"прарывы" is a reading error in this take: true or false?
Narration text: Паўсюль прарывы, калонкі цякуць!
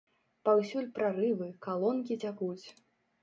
false